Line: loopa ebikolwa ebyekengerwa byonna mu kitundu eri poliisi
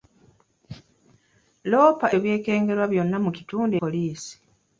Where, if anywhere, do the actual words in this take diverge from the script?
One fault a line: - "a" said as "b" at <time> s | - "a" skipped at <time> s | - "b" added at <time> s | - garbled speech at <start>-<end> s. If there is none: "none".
- "ebikolwa" skipped at 2.1 s
- "eri" skipped at 3.7 s